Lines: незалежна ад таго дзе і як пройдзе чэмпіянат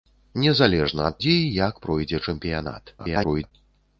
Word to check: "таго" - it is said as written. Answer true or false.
false